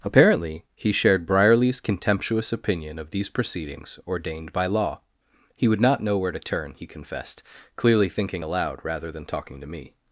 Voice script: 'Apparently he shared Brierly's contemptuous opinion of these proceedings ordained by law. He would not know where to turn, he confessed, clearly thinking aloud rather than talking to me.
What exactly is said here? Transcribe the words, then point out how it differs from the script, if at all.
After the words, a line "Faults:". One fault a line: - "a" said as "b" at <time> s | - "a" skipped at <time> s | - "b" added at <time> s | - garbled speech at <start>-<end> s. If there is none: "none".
'Apparently he shared Brierly's contemptuous opinion of these proceedings ordained by law. He would not know where to turn, he confessed, clearly thinking aloud rather than talking to me.
Faults:
none